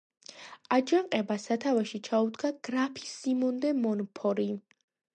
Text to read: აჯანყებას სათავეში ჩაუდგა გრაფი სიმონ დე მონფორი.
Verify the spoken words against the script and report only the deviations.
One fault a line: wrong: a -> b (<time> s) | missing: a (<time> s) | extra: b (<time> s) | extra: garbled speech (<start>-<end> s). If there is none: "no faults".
no faults